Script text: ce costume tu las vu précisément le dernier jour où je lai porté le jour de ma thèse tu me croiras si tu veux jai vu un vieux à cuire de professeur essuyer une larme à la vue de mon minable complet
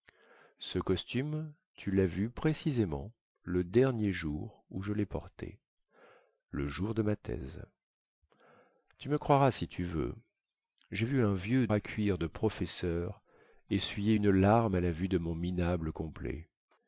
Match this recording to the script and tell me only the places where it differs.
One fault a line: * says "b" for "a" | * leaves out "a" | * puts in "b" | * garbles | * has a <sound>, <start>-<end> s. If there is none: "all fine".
all fine